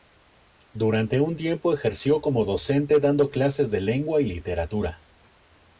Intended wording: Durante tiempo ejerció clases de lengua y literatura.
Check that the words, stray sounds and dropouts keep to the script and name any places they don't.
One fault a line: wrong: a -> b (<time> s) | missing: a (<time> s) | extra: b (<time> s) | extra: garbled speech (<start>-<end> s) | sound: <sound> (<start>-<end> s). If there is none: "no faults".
extra: un (1.2 s)
extra: como docente dando (2.2 s)